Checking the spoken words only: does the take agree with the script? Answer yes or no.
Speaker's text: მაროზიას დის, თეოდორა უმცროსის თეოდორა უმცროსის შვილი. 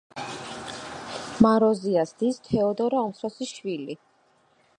no